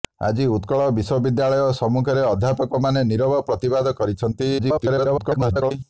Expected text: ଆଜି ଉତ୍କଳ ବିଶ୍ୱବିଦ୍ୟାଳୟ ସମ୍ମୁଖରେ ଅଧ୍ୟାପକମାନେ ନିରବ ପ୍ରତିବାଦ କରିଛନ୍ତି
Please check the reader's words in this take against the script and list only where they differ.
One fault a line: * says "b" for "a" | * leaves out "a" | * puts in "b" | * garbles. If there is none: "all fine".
* garbles